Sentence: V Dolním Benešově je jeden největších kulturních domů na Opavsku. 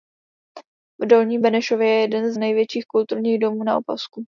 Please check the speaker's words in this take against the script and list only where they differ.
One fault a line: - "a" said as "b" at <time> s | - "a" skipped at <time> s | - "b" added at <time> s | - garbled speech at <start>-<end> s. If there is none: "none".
none